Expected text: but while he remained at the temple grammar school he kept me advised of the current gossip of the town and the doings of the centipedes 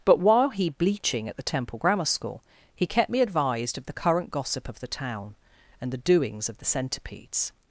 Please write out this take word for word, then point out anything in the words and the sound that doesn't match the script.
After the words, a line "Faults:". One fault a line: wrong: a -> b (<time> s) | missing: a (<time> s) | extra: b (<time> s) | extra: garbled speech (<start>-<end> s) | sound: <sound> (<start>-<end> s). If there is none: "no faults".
but while he bleaching at the temple grammar school he kept me advised of the current gossip of the town and the doings of the centipedes
Faults:
wrong: remained -> bleaching (0.7 s)